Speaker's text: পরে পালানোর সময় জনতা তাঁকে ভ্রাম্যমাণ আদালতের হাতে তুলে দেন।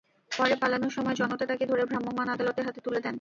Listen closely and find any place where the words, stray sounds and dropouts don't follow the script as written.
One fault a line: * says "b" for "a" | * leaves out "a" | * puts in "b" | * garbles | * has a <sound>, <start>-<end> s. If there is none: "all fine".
* puts in "ধরে"